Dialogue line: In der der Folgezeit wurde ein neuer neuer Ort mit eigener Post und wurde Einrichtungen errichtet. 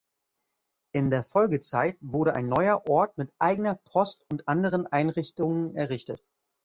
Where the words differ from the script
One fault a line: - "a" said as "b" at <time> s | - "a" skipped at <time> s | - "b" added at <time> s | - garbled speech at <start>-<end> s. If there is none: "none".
- "der" skipped at 1.2 s
- "neuer" skipped at 2.9 s
- "wurde" said as "anderen" at 4.5 s